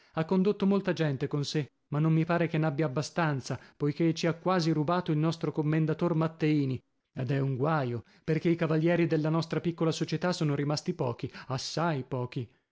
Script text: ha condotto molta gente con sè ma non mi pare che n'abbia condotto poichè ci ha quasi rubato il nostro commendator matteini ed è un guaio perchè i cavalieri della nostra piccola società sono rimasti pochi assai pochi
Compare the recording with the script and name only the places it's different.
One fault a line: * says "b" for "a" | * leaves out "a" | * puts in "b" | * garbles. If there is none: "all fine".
* says "abbastanza" for "condotto"